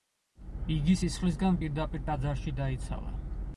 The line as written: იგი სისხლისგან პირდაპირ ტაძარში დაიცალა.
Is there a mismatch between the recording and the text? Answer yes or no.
no